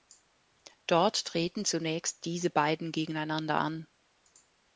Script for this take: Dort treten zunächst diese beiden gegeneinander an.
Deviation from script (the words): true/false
false